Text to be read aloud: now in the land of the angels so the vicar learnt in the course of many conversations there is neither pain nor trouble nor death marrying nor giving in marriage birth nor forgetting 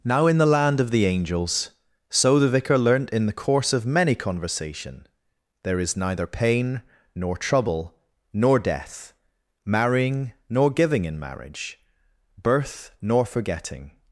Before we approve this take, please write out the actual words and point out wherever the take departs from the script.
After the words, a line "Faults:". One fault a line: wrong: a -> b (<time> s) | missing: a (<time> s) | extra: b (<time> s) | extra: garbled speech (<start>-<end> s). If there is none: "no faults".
now in the land of the angels so the vicar learnt in the course of many conversation there is neither pain nor trouble nor death marrying nor giving in marriage birth nor forgetting
Faults:
wrong: conversations -> conversation (4.2 s)